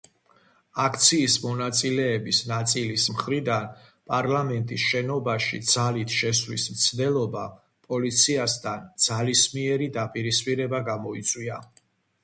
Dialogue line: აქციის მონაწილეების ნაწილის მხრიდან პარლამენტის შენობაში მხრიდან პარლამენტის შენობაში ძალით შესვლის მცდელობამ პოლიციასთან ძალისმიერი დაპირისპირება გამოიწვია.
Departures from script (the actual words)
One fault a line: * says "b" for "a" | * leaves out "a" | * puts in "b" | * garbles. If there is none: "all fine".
* leaves out "მხრიდან პარლამენტის შენობაში"